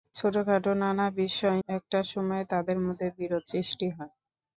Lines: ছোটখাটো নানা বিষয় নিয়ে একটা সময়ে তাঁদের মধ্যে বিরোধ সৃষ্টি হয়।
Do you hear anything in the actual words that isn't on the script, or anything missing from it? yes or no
yes